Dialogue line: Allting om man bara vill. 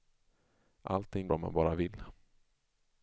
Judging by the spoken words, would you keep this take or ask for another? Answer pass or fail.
pass